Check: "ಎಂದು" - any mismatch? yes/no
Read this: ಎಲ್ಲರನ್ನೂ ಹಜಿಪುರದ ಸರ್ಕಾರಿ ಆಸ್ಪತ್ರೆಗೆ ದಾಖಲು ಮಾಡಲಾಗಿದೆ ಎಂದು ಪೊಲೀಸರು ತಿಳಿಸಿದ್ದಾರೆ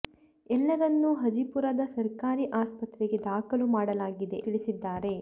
yes